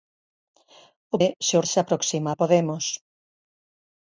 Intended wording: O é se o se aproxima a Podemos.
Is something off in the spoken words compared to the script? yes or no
no